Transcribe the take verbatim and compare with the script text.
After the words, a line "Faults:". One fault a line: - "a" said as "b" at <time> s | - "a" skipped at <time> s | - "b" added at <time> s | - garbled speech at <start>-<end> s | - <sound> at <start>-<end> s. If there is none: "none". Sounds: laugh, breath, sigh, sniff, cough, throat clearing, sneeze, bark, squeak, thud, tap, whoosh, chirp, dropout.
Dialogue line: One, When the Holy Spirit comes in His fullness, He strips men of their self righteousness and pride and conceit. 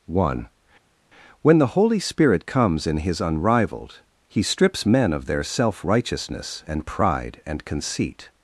One, When the Holy Spirit comes in His unrivaled, He strips men of their self righteousness and pride and conceit.
Faults:
- "fullness" said as "unrivaled" at 3.2 s